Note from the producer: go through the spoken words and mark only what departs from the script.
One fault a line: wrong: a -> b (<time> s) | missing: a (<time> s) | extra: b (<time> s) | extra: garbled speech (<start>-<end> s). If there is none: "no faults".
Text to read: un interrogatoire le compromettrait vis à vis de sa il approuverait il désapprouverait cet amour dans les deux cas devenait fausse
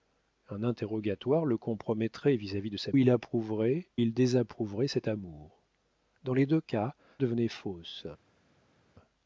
no faults